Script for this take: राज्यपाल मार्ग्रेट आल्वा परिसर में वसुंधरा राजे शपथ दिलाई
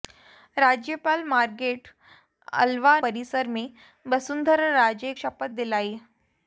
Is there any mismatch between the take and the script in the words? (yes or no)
no